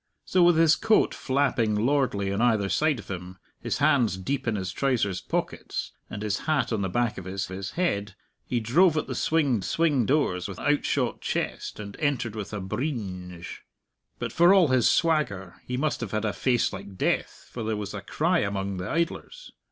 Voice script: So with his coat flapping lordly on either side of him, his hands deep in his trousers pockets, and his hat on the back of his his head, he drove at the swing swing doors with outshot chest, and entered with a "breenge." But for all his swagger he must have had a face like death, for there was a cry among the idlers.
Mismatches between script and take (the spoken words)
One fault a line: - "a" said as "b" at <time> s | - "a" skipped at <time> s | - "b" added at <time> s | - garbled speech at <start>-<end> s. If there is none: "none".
none